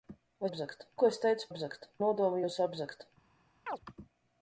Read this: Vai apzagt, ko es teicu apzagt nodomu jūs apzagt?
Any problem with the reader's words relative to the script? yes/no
no